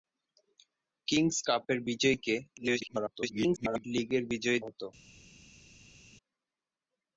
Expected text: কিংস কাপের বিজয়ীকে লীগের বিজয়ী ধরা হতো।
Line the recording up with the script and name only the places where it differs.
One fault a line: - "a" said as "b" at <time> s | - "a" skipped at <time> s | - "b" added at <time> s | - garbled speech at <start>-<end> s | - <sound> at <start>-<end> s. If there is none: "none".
- garbled speech at 2.6-3.8 s
- "ধরা" skipped at 4.6 s